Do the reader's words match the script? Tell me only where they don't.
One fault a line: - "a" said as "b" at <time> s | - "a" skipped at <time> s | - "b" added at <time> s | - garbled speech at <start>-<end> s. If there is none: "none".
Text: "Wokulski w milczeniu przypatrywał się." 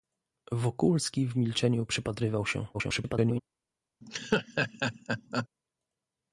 - garbled speech at 2.7-3.4 s